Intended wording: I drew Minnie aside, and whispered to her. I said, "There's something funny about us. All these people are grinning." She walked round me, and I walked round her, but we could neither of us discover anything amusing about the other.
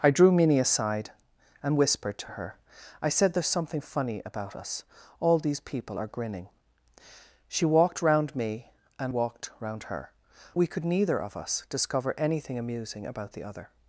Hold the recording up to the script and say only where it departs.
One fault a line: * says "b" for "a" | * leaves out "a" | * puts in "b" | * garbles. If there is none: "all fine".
* leaves out "I"
* leaves out "but"